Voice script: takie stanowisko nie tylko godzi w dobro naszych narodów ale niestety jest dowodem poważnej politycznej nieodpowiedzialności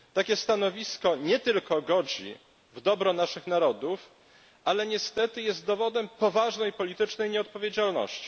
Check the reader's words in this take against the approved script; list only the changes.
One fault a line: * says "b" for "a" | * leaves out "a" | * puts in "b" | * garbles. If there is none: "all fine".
all fine